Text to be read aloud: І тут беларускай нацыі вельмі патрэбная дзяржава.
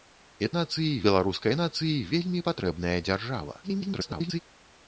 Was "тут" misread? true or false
true